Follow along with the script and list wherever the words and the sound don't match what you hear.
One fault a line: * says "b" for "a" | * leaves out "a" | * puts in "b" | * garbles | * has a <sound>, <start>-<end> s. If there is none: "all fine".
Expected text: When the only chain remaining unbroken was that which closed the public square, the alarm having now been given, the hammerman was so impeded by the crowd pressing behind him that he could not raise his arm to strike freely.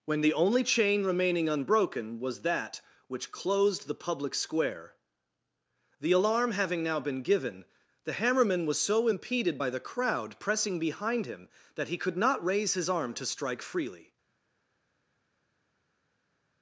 all fine